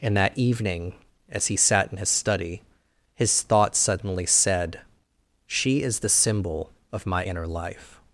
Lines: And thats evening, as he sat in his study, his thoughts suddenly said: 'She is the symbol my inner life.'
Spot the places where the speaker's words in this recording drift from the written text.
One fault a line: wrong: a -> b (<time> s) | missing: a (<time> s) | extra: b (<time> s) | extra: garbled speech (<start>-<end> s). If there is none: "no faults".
wrong: thats -> that (0.2 s)
extra: of (6.9 s)